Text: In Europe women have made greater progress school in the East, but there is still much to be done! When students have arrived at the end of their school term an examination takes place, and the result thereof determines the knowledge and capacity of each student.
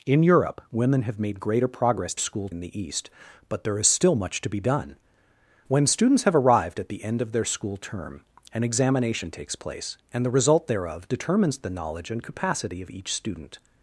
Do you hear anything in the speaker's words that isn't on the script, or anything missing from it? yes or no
no